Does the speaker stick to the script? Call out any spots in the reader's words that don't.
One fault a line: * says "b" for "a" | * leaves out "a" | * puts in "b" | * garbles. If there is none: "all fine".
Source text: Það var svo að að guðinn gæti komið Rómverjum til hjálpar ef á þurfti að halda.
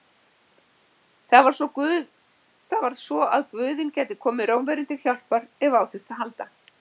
* leaves out "að"